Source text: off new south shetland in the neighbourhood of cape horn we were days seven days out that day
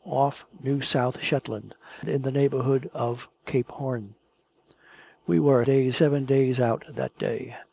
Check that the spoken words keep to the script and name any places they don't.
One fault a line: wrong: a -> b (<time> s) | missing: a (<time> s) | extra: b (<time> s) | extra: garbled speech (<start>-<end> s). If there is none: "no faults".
no faults